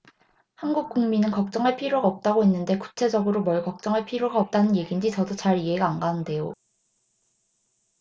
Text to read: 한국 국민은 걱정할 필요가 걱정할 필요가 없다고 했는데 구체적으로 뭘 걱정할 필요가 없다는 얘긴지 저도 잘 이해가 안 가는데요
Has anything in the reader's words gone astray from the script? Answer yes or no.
yes